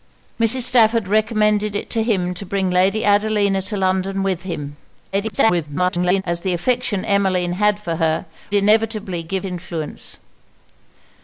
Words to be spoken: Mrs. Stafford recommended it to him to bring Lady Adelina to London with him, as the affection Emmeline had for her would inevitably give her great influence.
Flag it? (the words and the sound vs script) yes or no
yes